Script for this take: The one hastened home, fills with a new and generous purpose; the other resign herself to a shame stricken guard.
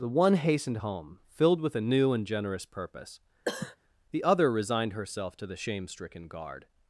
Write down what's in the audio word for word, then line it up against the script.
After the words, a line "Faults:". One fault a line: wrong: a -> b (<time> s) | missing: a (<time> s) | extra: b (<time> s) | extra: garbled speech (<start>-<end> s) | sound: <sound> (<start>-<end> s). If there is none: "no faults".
The one hastened home, filled with a new and generous purpose; the other resigned herself to the shame stricken guard.
Faults:
wrong: fills -> filled (1.3 s)
sound: cough (3.4-3.8 s)
wrong: resign -> resigned (4.5 s)
wrong: a -> the (5.4 s)